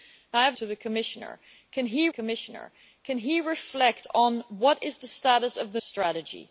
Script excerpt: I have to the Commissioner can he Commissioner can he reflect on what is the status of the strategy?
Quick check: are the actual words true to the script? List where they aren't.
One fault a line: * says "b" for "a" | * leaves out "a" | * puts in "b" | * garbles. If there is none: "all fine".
all fine